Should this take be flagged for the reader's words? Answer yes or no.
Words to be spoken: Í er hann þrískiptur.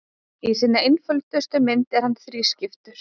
yes